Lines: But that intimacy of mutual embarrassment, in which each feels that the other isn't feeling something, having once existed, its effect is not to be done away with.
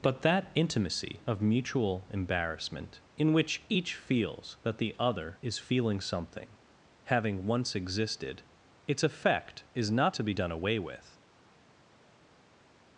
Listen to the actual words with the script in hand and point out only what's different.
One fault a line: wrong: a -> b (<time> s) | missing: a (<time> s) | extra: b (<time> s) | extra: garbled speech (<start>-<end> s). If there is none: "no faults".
wrong: isn't -> is (5.4 s)